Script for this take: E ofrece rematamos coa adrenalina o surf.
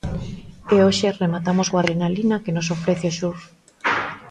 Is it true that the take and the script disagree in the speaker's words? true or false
true